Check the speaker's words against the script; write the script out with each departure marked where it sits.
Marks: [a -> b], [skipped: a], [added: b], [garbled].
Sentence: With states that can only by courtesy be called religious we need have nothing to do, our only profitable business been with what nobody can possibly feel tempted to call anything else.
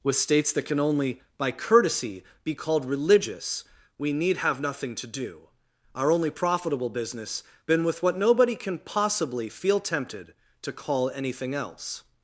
With states that can only by courtesy be called religious we need have nothing to do, our only profitable business been with what nobody can possibly feel tempted to call anything else.